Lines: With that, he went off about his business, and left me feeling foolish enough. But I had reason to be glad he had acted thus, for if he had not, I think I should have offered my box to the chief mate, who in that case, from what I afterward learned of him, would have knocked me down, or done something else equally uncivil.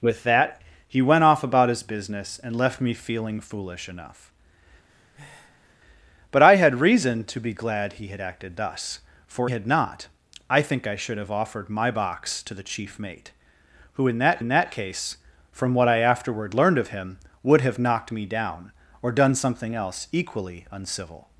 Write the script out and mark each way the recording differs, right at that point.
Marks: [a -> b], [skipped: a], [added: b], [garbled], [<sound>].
With that, he went off about his business, and left me feeling foolish enough. [breath] But I had reason to be glad he had acted thus, for [skipped: if he] had not, I think I should have offered my box to the chief mate, who in that [added: in that] case, from what I afterward learned of him, would have knocked me down, or done something else equally uncivil.